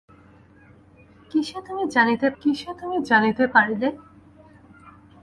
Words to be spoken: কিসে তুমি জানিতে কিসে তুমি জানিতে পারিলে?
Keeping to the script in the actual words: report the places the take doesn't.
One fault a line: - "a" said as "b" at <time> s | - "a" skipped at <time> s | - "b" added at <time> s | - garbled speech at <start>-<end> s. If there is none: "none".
none